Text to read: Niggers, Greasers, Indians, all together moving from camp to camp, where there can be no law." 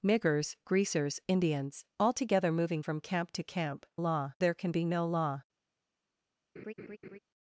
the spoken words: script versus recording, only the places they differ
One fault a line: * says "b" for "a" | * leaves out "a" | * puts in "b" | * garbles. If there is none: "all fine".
* says "law" for "where"